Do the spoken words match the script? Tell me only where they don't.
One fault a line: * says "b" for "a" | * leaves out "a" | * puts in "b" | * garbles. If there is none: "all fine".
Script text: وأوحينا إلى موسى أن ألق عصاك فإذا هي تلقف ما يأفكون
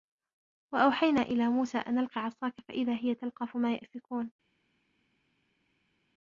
all fine